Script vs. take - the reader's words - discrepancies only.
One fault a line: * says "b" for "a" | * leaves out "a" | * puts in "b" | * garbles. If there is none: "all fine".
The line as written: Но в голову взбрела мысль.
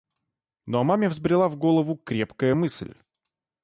* puts in "маме взбрела"
* says "крепкая" for "взбрела"